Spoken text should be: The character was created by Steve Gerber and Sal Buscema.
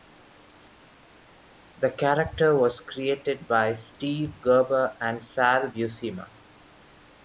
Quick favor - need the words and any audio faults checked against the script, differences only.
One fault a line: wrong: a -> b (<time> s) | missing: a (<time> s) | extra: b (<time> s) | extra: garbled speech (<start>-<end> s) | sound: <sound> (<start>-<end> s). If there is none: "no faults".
no faults